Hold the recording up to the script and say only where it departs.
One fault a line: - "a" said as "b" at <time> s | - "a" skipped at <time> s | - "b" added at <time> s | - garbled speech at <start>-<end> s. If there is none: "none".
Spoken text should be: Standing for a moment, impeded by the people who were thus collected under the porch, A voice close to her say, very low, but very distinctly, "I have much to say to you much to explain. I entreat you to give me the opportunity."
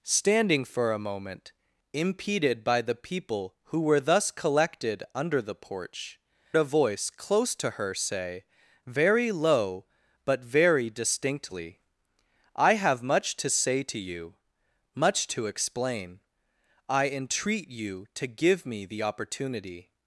none